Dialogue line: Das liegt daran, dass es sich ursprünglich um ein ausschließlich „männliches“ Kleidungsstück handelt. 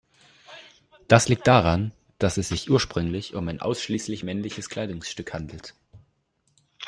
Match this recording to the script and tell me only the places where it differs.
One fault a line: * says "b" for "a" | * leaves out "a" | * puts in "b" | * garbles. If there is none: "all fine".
all fine